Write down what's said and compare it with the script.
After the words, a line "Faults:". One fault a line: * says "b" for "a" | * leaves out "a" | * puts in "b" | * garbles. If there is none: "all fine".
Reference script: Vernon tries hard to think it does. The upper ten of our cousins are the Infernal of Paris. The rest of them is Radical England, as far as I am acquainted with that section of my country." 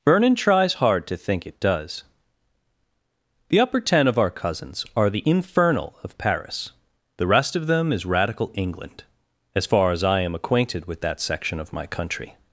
Vernon tries hard to think it does. The upper ten of our cousins are the Infernal of Paris. The rest of them is Radical England, as far as I am acquainted with that section of my country."
Faults:
all fine